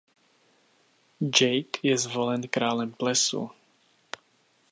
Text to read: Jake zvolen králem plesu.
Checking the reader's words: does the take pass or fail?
fail